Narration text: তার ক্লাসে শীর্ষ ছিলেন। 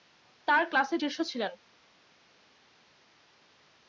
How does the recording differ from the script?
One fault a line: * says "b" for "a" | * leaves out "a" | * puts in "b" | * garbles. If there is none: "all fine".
all fine